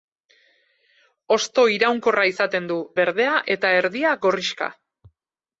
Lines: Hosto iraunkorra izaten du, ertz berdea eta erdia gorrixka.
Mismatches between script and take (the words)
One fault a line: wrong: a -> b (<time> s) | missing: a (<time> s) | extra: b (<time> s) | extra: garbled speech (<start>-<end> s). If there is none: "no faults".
missing: ertz (2.8 s)